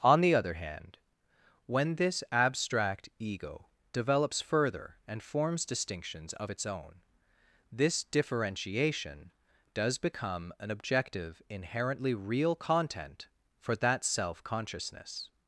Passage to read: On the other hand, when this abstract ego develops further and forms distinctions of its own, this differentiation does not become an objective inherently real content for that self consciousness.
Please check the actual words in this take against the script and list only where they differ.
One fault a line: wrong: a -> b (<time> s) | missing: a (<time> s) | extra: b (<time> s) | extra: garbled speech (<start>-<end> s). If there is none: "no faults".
missing: not (10.0 s)